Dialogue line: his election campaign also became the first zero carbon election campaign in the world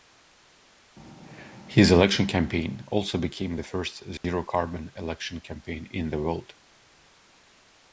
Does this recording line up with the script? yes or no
yes